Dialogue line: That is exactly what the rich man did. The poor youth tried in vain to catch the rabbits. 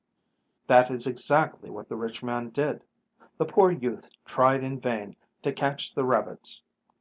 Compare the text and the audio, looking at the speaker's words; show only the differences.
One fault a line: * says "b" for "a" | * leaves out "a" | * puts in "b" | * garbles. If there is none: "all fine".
all fine